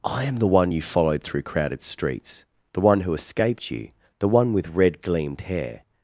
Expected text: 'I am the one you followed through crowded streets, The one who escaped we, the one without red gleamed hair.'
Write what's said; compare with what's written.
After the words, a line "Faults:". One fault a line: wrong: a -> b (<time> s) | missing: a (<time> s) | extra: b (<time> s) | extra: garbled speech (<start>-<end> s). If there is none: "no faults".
'I am the one you followed through crowded streets, The one who escaped you, the one with red gleamed hair.'
Faults:
wrong: we -> you (3.7 s)
wrong: without -> with (4.5 s)